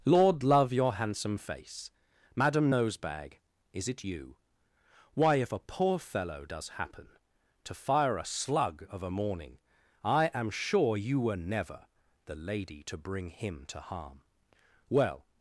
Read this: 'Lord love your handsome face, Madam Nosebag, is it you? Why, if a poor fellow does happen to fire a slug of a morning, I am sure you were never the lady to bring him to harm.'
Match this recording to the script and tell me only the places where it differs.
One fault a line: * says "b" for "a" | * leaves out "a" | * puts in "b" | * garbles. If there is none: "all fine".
* puts in "Well"